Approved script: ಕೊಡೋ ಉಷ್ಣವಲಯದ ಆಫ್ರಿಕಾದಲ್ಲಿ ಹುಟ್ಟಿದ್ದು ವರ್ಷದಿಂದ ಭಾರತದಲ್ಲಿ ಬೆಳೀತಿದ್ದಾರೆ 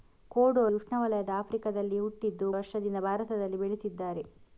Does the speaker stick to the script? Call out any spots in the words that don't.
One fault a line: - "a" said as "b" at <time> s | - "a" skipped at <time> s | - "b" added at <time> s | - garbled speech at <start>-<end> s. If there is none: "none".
none